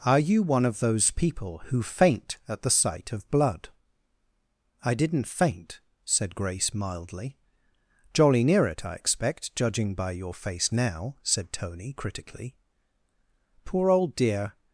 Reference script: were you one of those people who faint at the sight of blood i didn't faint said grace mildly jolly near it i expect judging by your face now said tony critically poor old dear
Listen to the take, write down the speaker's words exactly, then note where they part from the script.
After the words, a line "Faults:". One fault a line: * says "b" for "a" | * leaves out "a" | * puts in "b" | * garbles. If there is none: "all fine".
are you one of those people who faint at the sight of blood i didn't faint said grace mildly jolly near it i expect judging by your face now said tony critically poor old dear
Faults:
* says "are" for "were"